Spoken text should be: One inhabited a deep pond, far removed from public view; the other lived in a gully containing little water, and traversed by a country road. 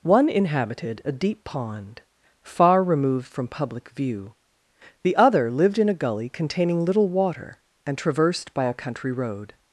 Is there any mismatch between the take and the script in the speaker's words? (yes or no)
no